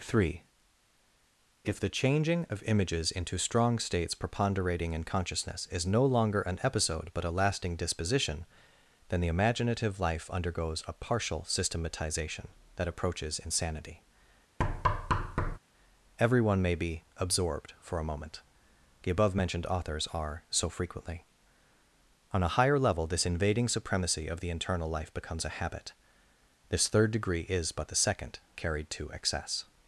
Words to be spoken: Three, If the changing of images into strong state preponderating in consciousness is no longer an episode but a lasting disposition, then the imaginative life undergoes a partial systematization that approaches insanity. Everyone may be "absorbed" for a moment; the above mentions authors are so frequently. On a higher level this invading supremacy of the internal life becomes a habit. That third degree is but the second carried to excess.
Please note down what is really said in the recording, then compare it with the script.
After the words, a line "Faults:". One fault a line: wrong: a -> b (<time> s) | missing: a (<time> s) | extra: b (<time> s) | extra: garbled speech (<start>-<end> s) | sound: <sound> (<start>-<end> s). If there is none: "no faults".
Three, If the changing of images into strong states preponderating in consciousness is no longer an episode but a lasting disposition, then the imaginative life undergoes a partial systematization that approaches insanity. Everyone may be "absorbed" for a moment; the above mentioned authors are so frequently. On a higher level this invading supremacy of the internal life becomes a habit. This third degree is but the second carried to excess.
Faults:
wrong: state -> states (3.8 s)
sound: thud (14.6-15.6 s)
wrong: mentions -> mentioned (19.3 s)
wrong: That -> This (26.7 s)